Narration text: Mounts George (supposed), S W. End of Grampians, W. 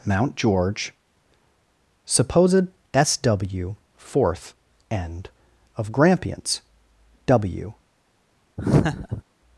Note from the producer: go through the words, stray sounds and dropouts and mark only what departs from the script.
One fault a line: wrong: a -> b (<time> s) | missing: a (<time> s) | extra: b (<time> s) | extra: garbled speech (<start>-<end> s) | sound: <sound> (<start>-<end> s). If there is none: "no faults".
wrong: Mounts -> Mount (0.1 s)
extra: fourth (4.0 s)
sound: laugh (8.6-9.2 s)